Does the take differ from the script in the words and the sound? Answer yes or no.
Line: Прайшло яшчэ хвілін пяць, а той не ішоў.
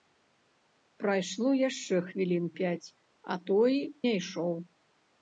no